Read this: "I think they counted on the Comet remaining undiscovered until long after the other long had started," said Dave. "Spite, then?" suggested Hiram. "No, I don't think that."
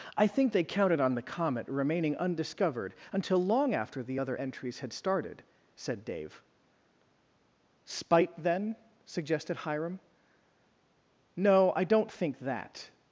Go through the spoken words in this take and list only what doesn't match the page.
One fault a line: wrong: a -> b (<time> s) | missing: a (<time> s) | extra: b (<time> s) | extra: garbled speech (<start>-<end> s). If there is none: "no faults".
wrong: long -> entries (4.4 s)